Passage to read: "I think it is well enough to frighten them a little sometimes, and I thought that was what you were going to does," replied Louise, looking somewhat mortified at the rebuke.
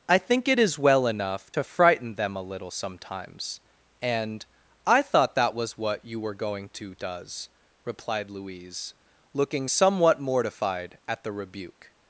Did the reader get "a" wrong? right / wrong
right